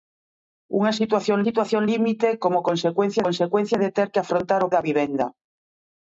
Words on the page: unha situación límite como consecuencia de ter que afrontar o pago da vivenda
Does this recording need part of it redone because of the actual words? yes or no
yes